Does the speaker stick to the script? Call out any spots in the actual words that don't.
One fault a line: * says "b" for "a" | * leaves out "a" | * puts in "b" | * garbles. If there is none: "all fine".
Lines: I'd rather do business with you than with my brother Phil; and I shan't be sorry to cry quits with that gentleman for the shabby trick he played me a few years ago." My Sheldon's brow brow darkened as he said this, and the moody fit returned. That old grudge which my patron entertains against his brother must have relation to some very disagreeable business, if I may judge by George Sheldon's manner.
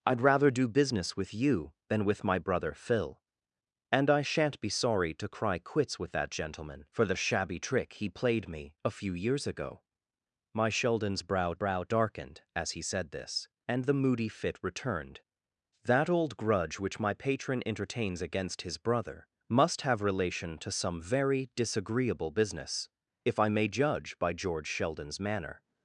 all fine